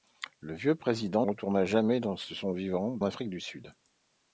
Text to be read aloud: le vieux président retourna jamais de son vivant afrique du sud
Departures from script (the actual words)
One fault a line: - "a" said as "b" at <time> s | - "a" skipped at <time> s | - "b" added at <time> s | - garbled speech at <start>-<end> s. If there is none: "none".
none